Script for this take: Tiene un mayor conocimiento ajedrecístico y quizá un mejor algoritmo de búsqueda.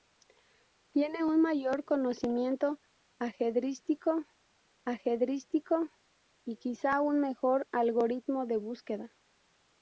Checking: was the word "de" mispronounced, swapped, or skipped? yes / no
no